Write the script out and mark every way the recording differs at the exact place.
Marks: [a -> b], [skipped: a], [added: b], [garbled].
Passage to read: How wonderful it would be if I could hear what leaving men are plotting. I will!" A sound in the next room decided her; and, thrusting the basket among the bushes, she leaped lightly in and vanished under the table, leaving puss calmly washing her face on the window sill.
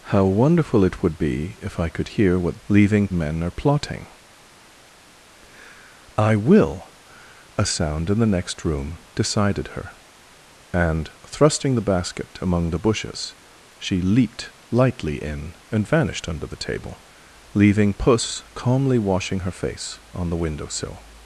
How wonderful it would be if I could hear what leaving men are plotting. I will!" A sound in the next room decided her; and, thrusting the basket among the bushes, she leaped lightly in and vanished under the table, leaving puss calmly washing her face on the window sill.